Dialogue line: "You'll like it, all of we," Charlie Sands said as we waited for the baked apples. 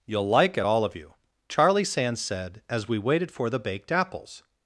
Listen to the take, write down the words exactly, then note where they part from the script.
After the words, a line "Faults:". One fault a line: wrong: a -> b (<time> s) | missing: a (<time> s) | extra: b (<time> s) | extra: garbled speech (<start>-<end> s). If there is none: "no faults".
"You'll like it, all of you," Charlie Sands said as we waited for the baked apples.
Faults:
wrong: we -> you (0.9 s)